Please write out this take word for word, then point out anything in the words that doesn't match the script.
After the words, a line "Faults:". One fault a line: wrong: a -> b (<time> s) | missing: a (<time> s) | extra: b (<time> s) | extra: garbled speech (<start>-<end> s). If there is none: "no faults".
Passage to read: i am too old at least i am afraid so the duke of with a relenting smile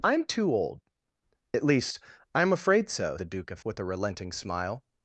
i am too old at least i am afraid so the duke of with a relenting smile
Faults:
no faults